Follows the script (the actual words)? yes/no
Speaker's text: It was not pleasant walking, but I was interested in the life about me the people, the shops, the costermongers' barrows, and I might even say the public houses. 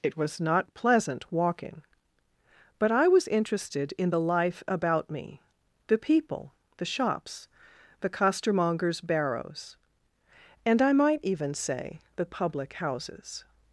yes